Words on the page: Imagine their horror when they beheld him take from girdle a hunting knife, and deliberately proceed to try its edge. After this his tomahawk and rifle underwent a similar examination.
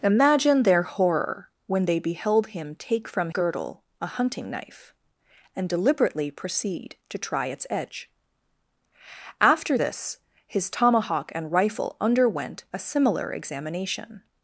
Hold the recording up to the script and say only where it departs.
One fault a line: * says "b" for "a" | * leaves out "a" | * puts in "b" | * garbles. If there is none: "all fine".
all fine